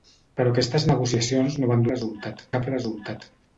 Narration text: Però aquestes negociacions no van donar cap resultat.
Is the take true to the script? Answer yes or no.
no